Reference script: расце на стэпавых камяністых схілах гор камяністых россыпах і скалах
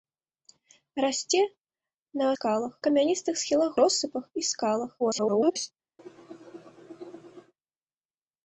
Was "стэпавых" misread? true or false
true